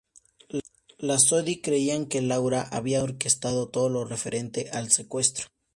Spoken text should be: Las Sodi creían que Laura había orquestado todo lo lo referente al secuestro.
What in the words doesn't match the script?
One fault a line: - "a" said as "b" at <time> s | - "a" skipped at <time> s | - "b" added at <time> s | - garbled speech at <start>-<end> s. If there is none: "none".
- "lo" skipped at 4.0 s